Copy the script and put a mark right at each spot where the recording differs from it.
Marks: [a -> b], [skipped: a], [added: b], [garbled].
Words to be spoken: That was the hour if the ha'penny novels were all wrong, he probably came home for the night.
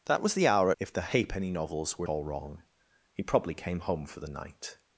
That was the hour if the ha'penny novels were all wrong, he probably came home for the night.